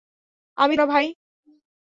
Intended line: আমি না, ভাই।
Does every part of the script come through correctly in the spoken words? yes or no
yes